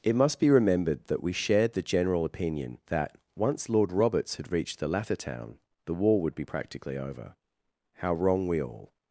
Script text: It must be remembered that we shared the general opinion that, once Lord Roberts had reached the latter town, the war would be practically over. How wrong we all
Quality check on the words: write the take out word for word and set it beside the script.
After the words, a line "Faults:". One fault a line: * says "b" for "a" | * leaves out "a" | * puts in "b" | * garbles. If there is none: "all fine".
It must be remembered that we shared the general opinion that, once Lord Roberts had reached the latter town, the war would be practically over. How wrong we all
Faults:
all fine